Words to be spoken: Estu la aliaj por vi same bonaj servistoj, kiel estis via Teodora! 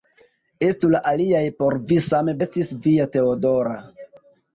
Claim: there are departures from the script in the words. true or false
true